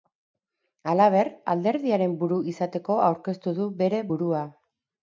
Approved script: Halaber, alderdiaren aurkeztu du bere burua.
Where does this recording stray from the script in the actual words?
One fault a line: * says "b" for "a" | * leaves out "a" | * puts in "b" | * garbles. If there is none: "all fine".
* puts in "buru izateko"